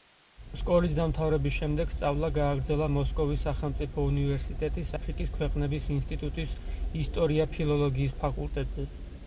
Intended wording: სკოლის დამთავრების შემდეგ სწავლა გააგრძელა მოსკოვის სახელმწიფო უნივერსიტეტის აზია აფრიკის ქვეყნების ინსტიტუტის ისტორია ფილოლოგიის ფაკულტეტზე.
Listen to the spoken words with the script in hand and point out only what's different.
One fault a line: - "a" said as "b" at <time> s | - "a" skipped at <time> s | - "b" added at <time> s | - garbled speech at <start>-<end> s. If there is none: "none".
- "აზია" skipped at 5.0 s